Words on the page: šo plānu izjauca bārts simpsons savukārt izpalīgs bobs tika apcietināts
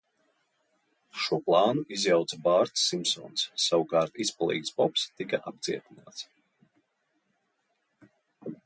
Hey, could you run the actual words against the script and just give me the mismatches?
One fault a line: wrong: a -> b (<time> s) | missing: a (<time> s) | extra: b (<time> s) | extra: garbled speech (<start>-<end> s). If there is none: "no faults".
no faults